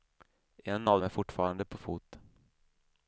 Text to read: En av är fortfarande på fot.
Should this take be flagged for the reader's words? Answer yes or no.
no